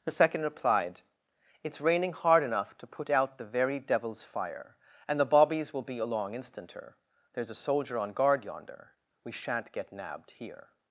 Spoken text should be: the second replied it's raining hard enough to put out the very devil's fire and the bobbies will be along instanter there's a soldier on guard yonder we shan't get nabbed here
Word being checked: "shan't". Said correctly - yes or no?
yes